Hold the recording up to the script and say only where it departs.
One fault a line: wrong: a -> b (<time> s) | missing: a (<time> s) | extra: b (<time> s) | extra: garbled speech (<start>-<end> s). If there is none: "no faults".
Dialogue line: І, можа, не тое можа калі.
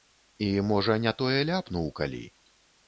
wrong: можа -> ляпнуў (1.5 s)